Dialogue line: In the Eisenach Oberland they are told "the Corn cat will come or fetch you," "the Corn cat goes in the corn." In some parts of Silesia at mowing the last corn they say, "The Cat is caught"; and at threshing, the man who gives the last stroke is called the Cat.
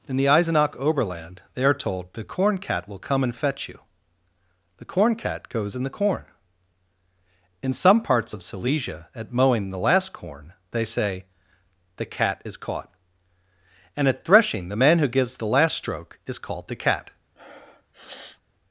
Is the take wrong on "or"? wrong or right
wrong